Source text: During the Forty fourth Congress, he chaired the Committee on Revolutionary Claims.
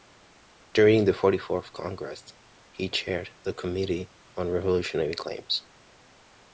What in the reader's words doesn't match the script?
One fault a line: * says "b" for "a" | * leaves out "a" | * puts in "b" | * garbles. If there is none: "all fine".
all fine